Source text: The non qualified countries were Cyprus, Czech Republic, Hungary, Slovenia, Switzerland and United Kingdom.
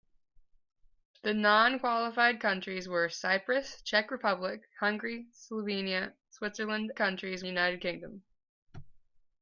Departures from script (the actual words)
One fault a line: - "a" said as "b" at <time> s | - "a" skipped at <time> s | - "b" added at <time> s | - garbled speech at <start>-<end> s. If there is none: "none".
- "and" said as "countries" at 7.0 s